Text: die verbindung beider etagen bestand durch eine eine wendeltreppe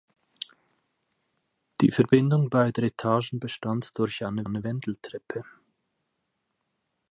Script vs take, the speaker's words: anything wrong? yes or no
no